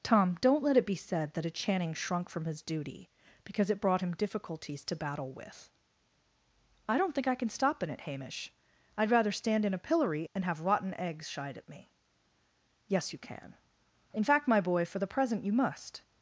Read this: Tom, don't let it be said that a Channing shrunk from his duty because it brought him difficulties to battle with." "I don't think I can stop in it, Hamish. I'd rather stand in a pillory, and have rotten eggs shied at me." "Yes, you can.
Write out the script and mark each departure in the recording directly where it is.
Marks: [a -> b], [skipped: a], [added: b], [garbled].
Tom, don't let it be said that a Channing shrunk from his duty because it brought him difficulties to battle with." "I don't think I can stop in it, Hamish. I'd rather stand in a pillory, and have rotten eggs shied at me." "Yes, you can. [added: In fact my boy for the present you must]